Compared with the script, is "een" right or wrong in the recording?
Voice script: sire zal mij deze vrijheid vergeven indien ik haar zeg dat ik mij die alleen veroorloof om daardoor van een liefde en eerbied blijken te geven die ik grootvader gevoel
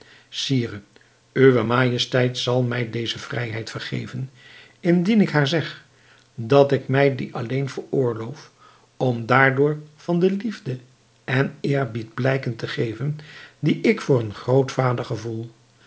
wrong